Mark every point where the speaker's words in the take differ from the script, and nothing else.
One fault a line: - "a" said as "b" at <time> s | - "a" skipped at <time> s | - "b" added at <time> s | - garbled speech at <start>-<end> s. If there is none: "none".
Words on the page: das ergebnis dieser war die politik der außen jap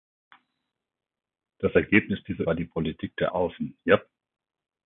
none